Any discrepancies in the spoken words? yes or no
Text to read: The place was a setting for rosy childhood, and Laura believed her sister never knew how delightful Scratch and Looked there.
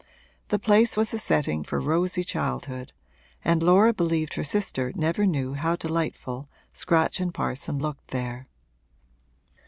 yes